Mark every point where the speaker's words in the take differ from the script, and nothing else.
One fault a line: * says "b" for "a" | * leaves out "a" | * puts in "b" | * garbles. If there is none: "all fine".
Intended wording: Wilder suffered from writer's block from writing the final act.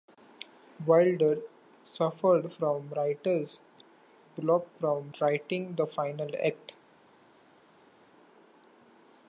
all fine